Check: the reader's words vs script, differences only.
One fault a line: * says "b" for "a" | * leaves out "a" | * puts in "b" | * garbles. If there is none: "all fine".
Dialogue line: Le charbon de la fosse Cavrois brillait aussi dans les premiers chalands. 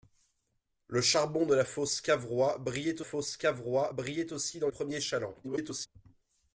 * puts in "fosse Cavrois brillait"
* leaves out "les"
* garbles